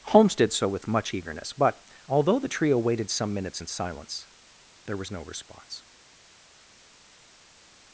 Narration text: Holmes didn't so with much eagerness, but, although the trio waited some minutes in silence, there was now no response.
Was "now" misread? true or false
true